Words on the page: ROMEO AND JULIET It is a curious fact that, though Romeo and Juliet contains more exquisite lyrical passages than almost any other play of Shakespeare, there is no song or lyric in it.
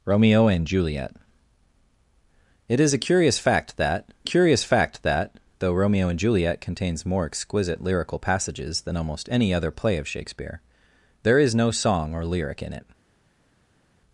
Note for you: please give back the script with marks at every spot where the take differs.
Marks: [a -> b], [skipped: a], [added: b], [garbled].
ROMEO AND JULIET It is a curious fact that, [added: curious fact that] though Romeo and Juliet contains more exquisite lyrical passages than almost any other play of Shakespeare, there is no song or lyric in it.